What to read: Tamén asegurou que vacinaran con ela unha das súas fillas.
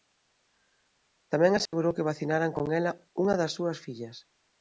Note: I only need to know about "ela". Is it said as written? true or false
true